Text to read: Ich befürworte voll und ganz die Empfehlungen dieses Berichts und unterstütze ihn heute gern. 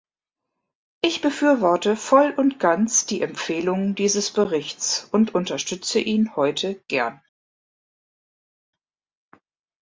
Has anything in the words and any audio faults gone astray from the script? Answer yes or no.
no